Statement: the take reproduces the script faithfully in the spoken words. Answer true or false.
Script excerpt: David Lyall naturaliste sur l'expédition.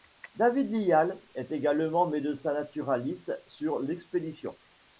false